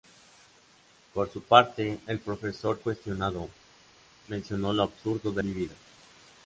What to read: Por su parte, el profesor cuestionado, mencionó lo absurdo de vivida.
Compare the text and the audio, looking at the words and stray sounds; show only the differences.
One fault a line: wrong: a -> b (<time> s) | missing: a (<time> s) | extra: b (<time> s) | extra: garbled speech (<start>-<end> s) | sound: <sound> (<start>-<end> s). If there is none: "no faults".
no faults